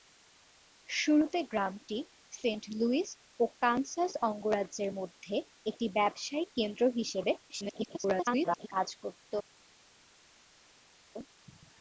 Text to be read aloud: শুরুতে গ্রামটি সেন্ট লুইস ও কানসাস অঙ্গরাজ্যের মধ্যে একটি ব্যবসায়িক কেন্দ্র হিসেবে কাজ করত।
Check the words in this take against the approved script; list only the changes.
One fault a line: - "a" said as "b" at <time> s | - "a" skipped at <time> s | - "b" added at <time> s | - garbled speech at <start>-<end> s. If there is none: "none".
- garbled speech at 7.5-8.7 s